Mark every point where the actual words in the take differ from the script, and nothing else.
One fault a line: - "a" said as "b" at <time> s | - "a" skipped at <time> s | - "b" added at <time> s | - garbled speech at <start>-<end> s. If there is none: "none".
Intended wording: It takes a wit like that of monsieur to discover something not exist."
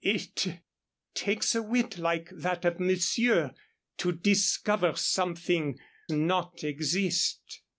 none